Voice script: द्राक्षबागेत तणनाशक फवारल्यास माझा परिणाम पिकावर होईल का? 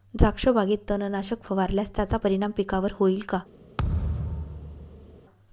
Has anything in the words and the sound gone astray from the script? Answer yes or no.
yes